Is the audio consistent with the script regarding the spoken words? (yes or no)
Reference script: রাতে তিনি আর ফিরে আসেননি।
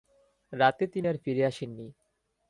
yes